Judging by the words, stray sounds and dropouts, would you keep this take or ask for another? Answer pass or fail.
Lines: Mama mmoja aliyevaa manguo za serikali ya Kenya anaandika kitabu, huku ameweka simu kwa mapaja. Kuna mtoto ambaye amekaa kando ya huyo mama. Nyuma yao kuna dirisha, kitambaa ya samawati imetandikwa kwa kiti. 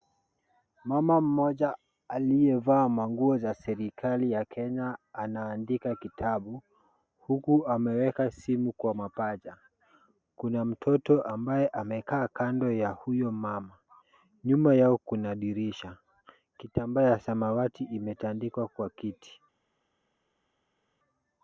pass